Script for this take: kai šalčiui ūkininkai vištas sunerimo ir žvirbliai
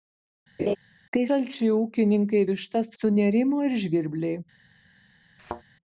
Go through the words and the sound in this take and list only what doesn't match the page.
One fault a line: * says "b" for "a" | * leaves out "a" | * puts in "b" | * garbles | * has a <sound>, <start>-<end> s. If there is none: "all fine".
* has a laugh, 0.6-0.8 s
* has a thud, 5.4-5.6 s